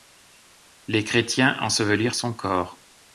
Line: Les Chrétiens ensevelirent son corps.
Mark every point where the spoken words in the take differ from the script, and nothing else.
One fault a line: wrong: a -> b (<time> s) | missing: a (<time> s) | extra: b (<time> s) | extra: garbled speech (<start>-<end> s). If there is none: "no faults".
no faults